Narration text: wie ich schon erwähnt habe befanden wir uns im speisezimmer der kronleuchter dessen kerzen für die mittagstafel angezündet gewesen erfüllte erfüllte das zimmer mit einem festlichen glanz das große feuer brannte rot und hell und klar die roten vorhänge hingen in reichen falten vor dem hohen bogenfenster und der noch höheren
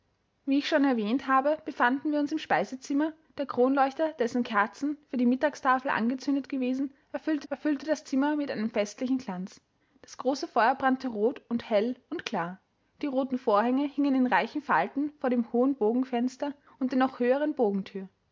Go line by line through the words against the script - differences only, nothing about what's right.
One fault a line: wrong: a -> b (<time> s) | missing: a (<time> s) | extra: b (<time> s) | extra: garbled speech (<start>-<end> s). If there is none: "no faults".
no faults